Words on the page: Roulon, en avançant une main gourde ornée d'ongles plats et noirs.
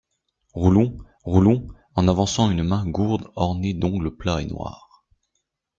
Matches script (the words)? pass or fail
fail